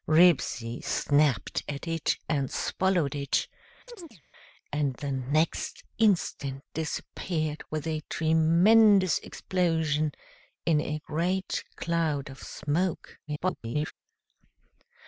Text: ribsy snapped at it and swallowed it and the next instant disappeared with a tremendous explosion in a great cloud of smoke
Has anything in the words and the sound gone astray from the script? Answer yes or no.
yes